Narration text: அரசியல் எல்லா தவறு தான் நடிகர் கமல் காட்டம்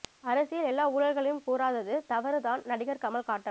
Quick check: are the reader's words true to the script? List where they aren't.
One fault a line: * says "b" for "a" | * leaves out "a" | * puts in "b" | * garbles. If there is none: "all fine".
* puts in "ஊழல்களையும் கூறாதது"